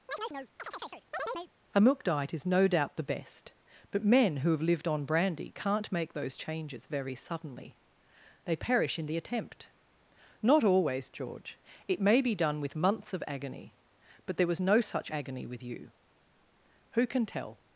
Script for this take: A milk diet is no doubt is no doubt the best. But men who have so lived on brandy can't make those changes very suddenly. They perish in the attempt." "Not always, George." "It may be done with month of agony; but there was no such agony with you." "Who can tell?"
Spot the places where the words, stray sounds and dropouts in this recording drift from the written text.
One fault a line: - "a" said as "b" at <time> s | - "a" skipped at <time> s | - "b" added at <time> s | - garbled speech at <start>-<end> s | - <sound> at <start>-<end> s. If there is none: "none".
- chirp at 0.1-1.5 s
- "is no doubt" skipped at 3.0 s
- "so" skipped at 4.6 s
- "month" said as "months" at 12.7 s